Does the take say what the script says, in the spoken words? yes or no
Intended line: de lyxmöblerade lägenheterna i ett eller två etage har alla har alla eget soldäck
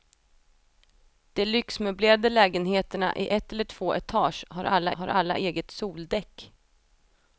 yes